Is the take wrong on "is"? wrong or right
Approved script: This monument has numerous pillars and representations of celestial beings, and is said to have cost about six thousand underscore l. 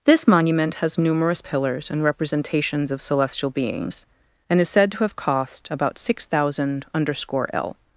right